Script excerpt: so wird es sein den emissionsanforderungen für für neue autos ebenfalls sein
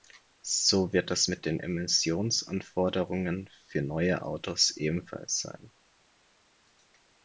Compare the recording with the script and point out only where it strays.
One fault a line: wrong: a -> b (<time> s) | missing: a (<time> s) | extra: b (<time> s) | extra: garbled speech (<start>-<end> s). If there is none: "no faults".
wrong: sein -> mit (1.3 s)
missing: für (3.8 s)